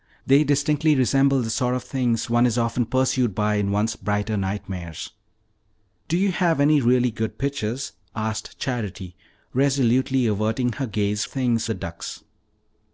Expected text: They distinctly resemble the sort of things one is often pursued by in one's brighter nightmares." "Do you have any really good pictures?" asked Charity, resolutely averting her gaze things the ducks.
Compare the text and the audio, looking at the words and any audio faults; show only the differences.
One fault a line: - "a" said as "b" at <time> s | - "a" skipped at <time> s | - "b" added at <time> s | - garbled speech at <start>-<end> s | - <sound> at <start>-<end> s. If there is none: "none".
none